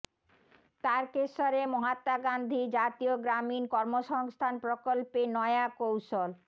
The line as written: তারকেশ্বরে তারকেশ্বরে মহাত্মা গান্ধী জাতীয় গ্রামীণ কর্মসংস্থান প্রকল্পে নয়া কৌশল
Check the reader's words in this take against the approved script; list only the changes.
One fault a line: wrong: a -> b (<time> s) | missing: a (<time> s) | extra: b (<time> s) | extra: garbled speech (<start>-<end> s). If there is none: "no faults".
missing: তারকেশ্বরে (1.6 s)